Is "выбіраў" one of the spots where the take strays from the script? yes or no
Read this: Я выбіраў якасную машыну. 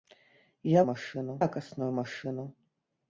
yes